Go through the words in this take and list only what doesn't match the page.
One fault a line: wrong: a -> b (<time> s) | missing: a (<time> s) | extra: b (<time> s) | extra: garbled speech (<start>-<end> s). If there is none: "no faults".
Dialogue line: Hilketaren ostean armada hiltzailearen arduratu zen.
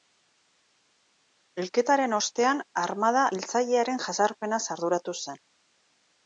extra: jazarpenaz (4.1 s)